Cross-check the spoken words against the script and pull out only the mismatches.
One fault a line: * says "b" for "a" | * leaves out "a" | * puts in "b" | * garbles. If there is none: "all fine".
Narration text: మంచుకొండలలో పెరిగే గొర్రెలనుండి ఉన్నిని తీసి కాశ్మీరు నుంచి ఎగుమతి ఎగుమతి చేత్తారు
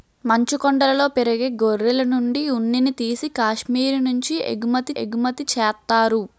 all fine